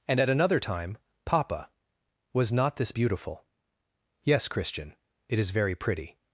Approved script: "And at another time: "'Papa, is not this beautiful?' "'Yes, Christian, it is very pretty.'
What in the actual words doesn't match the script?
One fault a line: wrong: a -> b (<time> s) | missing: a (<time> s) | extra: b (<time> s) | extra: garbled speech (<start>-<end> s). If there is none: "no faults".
wrong: is -> was (2.3 s)